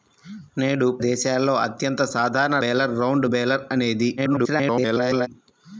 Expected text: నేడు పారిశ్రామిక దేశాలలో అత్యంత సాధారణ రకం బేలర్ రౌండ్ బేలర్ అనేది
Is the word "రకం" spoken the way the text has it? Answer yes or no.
no